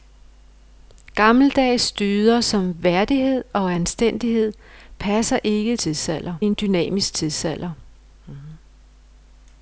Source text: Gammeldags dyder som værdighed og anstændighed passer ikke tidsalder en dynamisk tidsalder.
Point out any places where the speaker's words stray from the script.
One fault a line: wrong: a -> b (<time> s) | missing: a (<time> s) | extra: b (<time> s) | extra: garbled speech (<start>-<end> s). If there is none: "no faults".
no faults